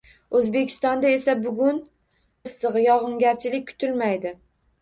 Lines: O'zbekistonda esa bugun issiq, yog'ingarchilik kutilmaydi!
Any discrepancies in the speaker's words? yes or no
no